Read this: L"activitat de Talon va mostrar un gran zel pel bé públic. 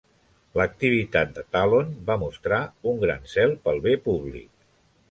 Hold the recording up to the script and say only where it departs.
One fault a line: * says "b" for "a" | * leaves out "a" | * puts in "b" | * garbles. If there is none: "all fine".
all fine